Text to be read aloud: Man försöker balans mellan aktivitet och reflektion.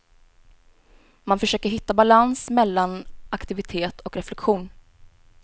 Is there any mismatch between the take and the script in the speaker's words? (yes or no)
yes